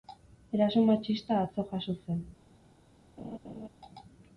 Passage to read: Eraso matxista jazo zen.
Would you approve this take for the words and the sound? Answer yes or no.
no